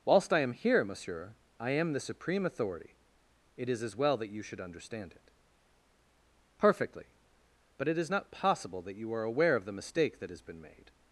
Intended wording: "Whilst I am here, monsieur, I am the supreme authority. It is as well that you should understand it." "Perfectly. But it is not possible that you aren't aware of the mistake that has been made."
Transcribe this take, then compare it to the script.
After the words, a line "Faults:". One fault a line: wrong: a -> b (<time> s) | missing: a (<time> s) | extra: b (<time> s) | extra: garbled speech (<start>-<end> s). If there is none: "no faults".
"Whilst I am here, monsieur, I am the supreme authority. It is as well that you should understand it." "Perfectly. But it is not possible that you are aware of the mistake that has been made."
Faults:
wrong: aren't -> are (9.1 s)